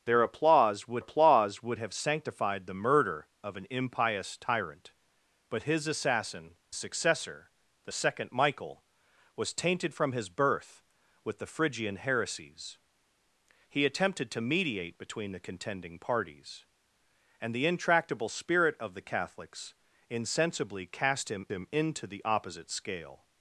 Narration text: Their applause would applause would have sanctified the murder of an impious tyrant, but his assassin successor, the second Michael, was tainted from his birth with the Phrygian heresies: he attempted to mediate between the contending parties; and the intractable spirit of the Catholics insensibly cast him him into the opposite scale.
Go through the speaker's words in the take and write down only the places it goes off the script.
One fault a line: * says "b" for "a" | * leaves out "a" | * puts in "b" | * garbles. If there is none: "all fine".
all fine